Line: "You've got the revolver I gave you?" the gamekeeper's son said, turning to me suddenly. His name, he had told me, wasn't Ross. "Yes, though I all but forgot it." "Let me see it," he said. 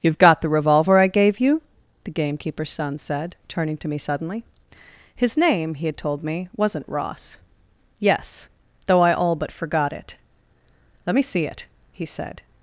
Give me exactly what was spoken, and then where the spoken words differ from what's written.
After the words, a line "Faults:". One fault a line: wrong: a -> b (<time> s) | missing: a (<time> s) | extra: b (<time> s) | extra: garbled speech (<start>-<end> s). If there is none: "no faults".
"You've got the revolver I gave you?" the gamekeeper's son said, turning to me suddenly. His name, he had told me, wasn't Ross. "Yes, though I all but forgot it." "Let me see it," he said.
Faults:
no faults